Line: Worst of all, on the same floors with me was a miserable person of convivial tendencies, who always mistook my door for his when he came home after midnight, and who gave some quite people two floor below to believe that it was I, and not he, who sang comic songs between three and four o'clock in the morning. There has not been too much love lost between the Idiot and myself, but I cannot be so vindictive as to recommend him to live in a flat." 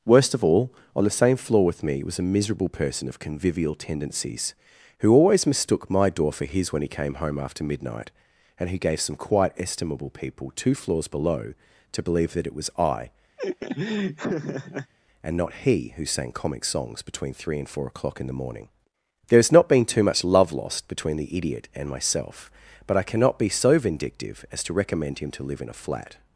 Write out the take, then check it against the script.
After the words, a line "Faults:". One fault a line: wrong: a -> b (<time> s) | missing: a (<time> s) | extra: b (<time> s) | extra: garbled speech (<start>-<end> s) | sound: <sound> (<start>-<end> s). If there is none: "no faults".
Worst of all, on the same floor with me was a miserable person of convivial tendencies, who always mistook my door for his when he came home after midnight, and who gave some quite estimable people two floors below to believe that it was I, and not he, who sang comic songs between three and four o'clock in the morning. There has not been too much love lost between the Idiot and myself, but I cannot be so vindictive as to recommend him to live in a flat."
Faults:
wrong: floors -> floor (1.4 s)
extra: estimable (9.6 s)
wrong: floor -> floors (10.7 s)
sound: laugh (13.4-14.9 s)